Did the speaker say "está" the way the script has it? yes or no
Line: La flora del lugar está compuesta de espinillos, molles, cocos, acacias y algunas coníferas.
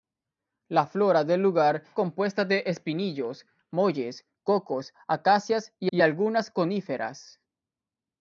no